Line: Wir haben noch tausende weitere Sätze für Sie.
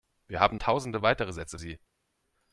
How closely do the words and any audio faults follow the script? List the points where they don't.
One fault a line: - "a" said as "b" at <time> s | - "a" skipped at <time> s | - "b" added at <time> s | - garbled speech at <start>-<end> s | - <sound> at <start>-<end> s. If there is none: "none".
- "noch" skipped at 0.6 s
- "für" skipped at 1.6 s